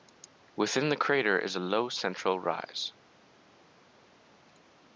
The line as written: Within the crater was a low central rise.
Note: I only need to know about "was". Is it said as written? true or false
false